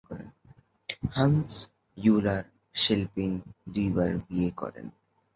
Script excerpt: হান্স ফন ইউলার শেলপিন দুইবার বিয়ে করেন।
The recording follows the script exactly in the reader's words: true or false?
false